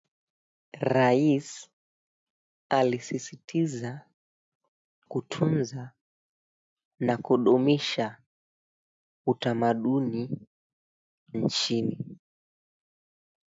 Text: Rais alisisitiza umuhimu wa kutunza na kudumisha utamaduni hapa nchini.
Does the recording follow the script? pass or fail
fail